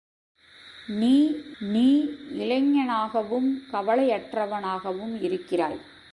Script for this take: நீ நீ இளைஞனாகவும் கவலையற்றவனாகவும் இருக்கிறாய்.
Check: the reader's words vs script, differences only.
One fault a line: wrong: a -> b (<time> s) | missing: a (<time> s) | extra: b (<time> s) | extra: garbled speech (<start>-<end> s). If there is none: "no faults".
no faults